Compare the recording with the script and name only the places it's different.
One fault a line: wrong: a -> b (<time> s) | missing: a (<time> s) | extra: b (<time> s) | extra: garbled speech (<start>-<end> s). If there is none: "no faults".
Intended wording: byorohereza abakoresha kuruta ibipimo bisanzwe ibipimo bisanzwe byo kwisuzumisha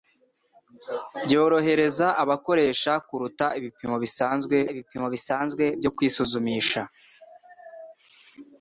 no faults